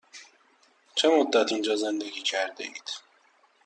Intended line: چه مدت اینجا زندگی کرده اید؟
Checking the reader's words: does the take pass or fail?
pass